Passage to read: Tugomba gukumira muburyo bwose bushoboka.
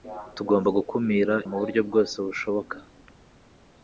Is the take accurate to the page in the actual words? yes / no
yes